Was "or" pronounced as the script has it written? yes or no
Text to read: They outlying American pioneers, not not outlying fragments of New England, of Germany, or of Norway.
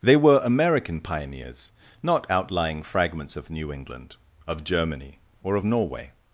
yes